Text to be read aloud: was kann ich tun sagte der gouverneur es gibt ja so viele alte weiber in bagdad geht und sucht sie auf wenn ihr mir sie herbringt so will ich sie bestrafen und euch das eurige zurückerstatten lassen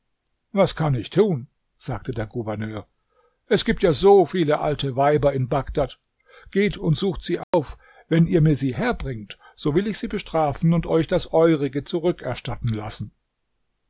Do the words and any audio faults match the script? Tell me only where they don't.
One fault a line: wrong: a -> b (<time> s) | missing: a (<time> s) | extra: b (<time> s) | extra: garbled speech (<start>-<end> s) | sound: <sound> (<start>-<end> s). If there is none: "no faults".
sound: dropout (7.4-7.5 s)